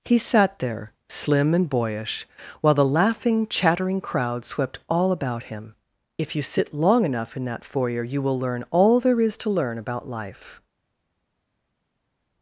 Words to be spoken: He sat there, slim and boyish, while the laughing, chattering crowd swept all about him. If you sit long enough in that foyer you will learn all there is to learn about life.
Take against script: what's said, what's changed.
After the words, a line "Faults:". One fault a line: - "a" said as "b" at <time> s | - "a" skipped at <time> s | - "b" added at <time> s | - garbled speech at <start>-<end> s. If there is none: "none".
He sat there, slim and boyish, while the laughing, chattering crowd swept all about him. If you sit long enough in that foyer you will learn all there is to learn about life.
Faults:
none